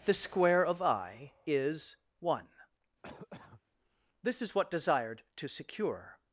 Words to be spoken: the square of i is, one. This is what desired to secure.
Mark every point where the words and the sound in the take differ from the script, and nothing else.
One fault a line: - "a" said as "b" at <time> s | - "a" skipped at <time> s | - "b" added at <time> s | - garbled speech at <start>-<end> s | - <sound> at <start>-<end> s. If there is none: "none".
- cough at 3.0-3.6 s